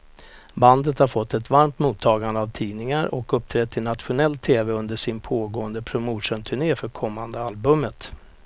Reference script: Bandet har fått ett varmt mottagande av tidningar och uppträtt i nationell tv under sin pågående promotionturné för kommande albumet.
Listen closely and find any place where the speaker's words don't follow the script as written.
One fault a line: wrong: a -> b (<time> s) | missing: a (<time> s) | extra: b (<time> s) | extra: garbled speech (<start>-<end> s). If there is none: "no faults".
no faults